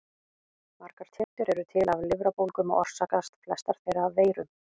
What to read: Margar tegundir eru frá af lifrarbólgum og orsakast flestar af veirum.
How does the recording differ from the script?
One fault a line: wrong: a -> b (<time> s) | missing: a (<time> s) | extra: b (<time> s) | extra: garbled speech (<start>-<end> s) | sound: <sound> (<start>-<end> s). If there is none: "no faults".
sound: dropout (1.2-1.4 s)
wrong: frá -> til (1.7 s)
extra: þeirra (3.8 s)